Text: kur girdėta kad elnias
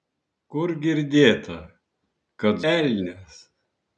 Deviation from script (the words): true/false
false